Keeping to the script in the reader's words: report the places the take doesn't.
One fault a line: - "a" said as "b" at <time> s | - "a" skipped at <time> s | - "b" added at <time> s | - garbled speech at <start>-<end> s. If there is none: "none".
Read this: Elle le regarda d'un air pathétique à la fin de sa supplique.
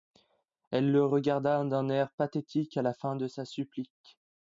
none